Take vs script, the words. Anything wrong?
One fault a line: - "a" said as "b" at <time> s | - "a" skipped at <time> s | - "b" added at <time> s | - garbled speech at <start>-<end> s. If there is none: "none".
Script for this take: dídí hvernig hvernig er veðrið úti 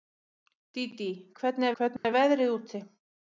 none